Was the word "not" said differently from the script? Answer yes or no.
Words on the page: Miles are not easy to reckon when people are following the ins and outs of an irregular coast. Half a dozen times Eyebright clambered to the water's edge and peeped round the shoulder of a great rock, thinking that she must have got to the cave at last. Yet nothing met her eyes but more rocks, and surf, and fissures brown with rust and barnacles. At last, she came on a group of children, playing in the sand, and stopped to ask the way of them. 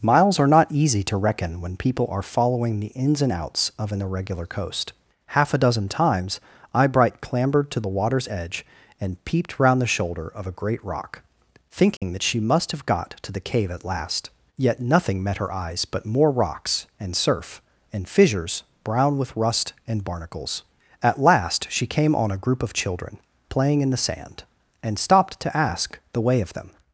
no